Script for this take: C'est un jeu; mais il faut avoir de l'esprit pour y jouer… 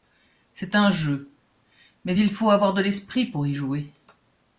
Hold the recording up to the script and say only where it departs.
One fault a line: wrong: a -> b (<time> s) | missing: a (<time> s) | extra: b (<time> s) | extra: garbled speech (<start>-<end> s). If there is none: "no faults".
no faults